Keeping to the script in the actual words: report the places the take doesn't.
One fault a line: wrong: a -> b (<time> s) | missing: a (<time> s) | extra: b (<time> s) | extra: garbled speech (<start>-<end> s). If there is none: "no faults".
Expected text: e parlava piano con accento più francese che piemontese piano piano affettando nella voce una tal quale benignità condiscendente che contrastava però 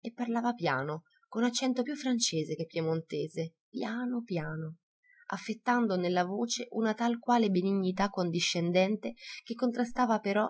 no faults